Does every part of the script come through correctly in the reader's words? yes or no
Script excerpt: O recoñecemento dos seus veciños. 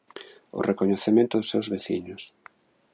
yes